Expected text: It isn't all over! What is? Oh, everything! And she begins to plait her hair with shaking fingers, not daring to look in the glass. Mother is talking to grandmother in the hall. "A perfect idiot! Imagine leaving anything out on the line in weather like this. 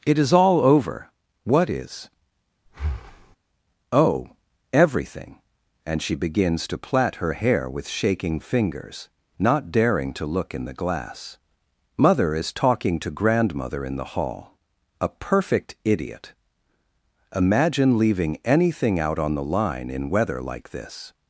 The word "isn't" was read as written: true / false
false